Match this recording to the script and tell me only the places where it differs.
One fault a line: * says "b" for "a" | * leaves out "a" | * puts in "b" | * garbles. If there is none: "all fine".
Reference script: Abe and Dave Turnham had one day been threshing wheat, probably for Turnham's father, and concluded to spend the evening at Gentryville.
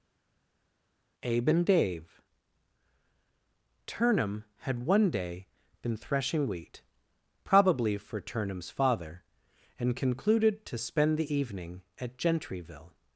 all fine